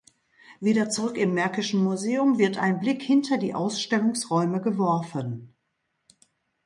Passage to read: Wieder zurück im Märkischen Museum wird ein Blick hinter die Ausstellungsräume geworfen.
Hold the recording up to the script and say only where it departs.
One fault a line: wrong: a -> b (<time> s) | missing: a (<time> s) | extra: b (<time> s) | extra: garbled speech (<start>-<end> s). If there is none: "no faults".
no faults